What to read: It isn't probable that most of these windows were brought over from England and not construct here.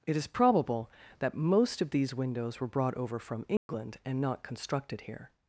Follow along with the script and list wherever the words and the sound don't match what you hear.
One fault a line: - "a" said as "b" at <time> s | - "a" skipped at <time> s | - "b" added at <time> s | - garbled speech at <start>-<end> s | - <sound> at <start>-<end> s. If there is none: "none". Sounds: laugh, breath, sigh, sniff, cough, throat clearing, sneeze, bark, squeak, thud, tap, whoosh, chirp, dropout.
- "isn't" said as "is" at 0.2 s
- dropout at 3.6-3.7 s
- "construct" said as "constructed" at 4.4 s